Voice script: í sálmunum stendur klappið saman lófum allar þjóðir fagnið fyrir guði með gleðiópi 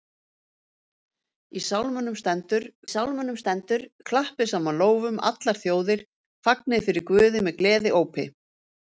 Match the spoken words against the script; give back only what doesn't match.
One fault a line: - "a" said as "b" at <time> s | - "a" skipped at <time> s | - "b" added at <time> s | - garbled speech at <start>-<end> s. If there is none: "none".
- "sálmunum stendur" added at 2.9 s